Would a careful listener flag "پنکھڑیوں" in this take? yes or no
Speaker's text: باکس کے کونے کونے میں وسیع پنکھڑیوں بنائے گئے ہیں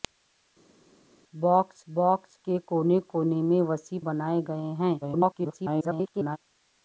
yes